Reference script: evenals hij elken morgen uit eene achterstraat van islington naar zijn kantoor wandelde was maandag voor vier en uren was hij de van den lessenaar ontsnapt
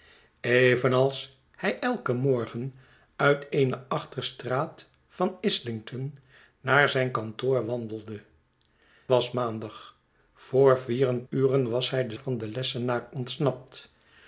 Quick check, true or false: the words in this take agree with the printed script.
true